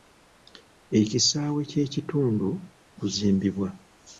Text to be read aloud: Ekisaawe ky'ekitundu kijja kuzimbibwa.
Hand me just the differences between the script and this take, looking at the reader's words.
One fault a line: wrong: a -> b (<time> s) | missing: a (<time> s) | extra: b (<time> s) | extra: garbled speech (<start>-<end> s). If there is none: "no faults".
missing: kijja (2.5 s)